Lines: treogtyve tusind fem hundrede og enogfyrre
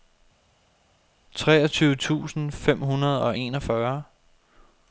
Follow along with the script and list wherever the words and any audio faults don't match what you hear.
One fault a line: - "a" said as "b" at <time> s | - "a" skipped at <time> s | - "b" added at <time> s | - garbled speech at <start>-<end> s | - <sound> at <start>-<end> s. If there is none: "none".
none